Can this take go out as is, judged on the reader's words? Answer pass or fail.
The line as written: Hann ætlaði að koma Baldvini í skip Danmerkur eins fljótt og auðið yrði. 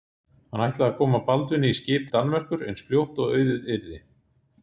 pass